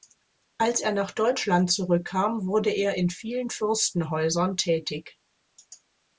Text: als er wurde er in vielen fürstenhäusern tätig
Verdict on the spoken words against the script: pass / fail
fail